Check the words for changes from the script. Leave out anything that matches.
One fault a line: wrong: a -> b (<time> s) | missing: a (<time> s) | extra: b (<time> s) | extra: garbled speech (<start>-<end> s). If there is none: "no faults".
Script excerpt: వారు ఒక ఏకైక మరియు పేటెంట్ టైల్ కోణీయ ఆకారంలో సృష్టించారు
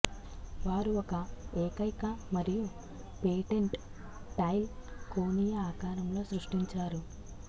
no faults